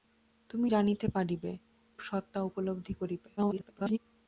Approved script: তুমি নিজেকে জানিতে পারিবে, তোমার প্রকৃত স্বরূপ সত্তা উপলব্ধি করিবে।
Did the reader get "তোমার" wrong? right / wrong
wrong